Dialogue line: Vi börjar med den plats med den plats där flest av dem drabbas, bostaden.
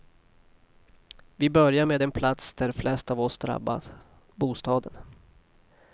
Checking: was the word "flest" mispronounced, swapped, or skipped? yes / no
no